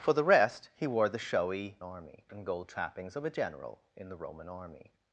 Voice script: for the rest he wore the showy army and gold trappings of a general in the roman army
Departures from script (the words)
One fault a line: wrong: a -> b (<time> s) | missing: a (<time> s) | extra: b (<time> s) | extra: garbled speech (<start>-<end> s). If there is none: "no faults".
no faults